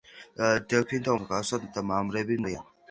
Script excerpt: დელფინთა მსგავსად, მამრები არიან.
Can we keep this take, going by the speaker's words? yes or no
yes